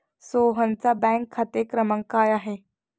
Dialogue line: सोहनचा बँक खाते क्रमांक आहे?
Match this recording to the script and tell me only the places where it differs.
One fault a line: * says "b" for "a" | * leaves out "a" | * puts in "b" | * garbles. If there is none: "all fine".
* puts in "काय"